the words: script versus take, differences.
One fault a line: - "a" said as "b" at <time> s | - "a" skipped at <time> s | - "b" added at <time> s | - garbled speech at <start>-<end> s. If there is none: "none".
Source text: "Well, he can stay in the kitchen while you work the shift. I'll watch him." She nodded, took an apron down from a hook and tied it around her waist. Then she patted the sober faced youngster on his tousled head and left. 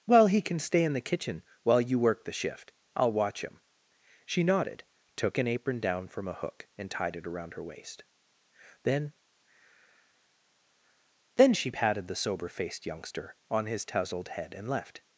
- "Then" added at 11.3 s